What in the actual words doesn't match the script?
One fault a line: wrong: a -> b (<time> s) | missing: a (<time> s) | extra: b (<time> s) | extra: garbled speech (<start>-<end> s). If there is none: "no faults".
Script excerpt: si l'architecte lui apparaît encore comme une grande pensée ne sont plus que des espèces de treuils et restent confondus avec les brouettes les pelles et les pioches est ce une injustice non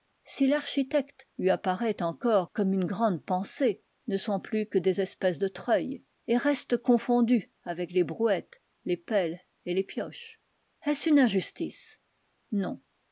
no faults